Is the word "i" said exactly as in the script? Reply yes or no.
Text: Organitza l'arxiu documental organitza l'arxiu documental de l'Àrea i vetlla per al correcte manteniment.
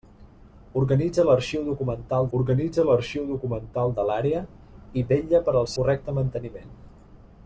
yes